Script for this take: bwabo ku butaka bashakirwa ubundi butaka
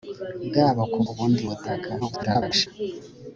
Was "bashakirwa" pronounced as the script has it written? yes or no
no